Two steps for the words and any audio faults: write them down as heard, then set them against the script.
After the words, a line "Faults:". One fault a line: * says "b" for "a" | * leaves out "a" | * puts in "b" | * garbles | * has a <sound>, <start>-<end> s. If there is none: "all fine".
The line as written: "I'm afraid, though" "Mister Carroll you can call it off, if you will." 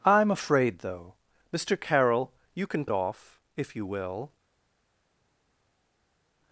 "I'm afraid, though" "Mister Carroll you can it off, if you will."
Faults:
* leaves out "call"